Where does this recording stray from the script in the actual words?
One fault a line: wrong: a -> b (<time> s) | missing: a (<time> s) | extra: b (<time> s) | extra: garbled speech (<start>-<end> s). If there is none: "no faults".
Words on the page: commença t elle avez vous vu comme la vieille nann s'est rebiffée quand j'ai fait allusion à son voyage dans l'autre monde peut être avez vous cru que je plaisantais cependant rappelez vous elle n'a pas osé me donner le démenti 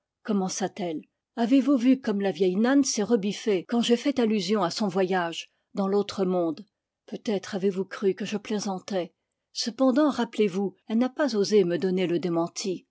no faults